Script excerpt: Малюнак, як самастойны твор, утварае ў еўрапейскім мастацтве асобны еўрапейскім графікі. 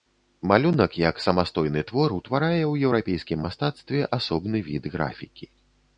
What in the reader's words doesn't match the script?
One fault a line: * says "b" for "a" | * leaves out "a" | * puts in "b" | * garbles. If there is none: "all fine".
* says "від" for "еўрапейскім"